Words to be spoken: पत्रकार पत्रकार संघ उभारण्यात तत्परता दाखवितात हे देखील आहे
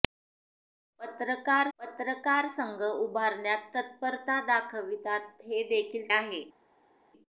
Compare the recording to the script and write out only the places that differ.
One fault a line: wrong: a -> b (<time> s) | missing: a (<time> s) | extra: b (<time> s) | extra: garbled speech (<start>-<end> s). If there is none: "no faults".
no faults